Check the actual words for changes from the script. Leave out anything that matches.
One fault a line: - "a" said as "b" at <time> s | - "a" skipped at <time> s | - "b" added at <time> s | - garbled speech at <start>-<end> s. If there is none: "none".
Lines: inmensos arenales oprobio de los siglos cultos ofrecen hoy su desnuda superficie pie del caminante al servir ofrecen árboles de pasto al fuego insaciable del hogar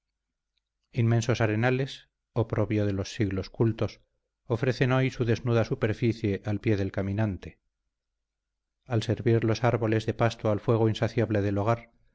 - "al" added at 6.4 s
- "ofrecen" said as "los" at 9.4 s